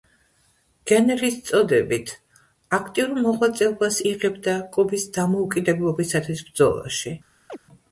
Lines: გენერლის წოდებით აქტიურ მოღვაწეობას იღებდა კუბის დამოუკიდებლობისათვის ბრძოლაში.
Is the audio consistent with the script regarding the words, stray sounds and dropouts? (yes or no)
no